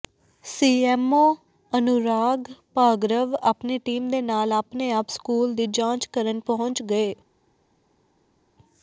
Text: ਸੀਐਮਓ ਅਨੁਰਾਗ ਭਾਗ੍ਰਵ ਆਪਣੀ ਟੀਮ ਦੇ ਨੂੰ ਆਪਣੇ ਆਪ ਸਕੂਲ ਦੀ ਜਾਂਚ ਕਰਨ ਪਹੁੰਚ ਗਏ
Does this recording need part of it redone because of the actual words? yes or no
yes